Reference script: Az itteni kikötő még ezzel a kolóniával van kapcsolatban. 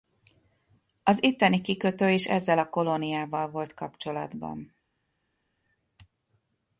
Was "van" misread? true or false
true